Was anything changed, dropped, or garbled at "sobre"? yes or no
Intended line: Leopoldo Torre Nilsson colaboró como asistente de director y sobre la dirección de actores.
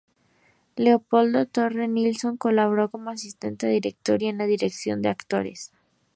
yes